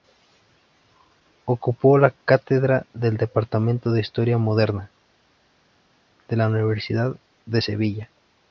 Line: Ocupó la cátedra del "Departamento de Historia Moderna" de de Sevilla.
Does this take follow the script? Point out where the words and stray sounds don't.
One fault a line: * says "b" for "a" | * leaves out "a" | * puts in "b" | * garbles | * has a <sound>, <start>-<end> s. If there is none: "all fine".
* puts in "la Universidad"